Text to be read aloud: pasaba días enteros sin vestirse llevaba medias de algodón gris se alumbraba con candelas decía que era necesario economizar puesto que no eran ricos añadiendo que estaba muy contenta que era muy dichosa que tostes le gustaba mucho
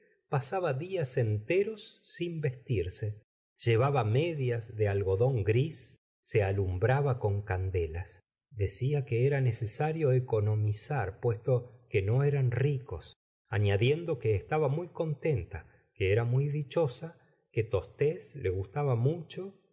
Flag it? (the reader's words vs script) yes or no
no